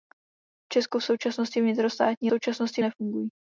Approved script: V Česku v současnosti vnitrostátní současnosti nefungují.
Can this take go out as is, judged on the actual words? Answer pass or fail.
pass